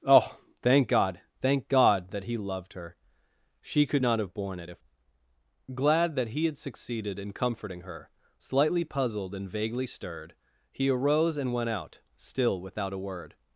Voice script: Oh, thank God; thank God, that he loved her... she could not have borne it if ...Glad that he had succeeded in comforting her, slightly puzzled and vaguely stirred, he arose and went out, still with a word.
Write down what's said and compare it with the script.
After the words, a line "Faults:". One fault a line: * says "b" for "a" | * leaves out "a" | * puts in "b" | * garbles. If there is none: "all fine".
Oh, thank God; thank God, that he loved her... she could not have borne it if ...Glad that he had succeeded in comforting her, slightly puzzled and vaguely stirred, he arose and went out, still without a word.
Faults:
* says "without" for "with"